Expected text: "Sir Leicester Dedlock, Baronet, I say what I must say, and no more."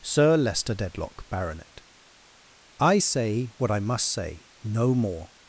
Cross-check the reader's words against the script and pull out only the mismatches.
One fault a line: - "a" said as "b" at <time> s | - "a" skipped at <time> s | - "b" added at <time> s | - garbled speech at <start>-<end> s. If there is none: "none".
- "and" skipped at 4.5 s